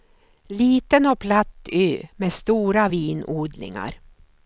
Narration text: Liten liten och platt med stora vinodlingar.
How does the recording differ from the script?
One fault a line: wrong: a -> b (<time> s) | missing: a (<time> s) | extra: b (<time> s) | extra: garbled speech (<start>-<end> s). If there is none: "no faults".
missing: liten (1.1 s)
extra: ö (1.7 s)